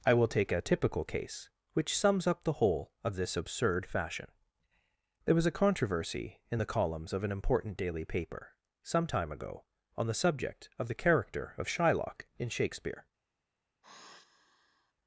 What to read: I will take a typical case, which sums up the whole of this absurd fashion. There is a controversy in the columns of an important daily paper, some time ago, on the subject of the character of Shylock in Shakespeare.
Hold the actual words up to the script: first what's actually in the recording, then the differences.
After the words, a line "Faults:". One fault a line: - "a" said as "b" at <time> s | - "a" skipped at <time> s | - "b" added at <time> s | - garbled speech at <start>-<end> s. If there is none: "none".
I will take a typical case, which sums up the whole of this absurd fashion. There was a controversy in the columns of an important daily paper, some time ago, on the subject of the character of Shylock in Shakespeare.
Faults:
- "is" said as "was" at 5.3 s